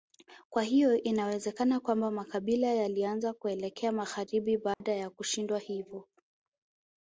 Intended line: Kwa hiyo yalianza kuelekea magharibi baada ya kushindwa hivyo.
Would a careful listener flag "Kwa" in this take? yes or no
no